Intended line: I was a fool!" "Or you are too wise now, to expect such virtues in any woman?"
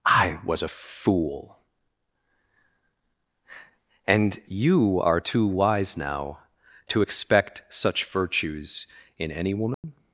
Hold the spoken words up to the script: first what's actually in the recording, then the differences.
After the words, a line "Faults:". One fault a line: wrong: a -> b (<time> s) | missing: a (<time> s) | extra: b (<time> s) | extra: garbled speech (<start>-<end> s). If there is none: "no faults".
I was a fool!" "And you are too wise now, to expect such virtues in any woman?"
Faults:
wrong: Or -> And (4.1 s)